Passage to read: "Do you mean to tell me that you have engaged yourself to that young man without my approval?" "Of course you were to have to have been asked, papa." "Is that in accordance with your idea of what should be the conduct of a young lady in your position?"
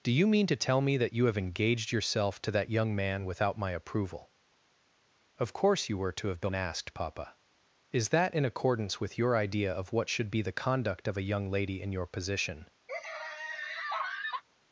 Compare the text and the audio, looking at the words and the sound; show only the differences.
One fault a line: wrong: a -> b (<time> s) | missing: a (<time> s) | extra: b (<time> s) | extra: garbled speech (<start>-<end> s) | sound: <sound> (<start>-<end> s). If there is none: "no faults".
missing: to have (6.4 s)
sound: laugh (12.9-14.4 s)